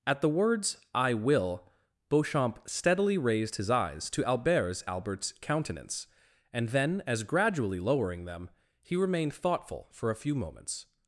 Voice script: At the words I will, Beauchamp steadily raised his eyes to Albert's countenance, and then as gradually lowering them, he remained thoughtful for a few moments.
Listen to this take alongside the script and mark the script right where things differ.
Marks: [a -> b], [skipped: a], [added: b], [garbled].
At the words I will, Beauchamp steadily raised his eyes to Albert's [added: Albert's] countenance, and then as gradually lowering them, he remained thoughtful for a few moments.